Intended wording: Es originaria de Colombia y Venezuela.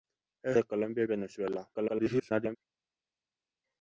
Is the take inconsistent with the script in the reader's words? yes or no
yes